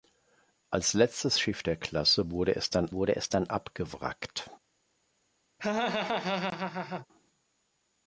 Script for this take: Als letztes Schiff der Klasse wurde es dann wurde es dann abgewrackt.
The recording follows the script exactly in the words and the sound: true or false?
false